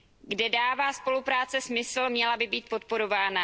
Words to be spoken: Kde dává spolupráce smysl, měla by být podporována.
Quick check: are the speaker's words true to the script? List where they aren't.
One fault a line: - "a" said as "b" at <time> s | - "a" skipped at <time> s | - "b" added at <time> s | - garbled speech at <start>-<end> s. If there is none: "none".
none